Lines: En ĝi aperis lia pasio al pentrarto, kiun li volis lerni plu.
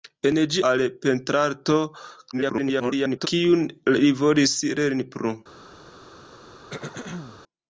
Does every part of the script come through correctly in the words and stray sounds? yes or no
no